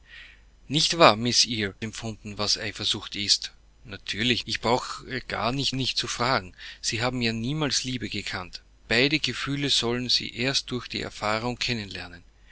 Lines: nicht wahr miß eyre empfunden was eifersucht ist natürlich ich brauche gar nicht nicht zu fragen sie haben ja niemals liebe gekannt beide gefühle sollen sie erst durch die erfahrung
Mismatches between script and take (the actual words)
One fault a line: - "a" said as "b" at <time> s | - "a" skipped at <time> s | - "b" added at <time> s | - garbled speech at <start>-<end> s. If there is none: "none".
none